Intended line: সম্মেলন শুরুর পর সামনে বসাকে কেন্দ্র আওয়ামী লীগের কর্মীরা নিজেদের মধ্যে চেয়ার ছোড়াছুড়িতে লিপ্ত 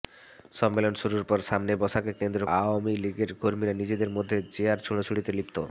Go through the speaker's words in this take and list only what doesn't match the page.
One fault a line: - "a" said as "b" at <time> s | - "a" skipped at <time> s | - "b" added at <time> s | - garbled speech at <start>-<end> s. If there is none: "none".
none